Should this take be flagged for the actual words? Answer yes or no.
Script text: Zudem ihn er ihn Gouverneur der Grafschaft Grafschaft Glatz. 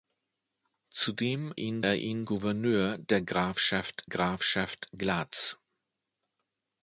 no